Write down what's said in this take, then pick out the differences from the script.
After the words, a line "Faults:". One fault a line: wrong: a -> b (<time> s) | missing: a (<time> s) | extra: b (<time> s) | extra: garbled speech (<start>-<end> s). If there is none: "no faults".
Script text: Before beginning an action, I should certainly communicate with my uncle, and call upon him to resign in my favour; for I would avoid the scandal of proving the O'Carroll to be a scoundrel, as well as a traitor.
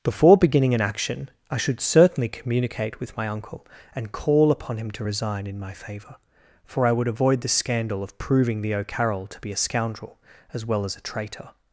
Before beginning an action, I should certainly communicate with my uncle, and call upon him to resign in my favour; for I would avoid the scandal of proving the O'Carroll to be a scoundrel, as well as a traitor.
Faults:
no faults